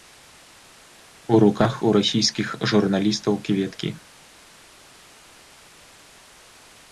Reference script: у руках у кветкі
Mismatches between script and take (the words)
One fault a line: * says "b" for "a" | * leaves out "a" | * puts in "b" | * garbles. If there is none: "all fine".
* puts in "расійскіх журналістаў"